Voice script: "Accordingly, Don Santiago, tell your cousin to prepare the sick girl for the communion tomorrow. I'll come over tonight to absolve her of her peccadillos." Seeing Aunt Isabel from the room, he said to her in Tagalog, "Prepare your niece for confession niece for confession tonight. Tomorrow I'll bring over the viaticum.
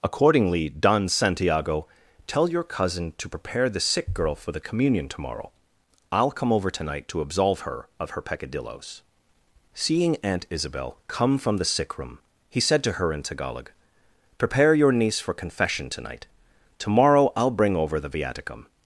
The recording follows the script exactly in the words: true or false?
false